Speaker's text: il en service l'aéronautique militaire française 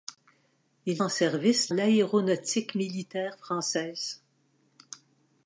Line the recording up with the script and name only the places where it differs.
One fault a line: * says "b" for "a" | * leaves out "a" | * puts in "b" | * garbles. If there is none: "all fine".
all fine